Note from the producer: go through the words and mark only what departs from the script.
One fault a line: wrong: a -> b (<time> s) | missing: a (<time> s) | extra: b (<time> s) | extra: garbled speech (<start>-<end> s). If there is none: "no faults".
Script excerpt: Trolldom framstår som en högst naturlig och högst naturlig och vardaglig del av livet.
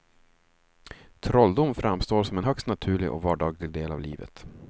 missing: högst naturlig och (3.2 s)